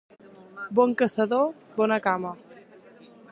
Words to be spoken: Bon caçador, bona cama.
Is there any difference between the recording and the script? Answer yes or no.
no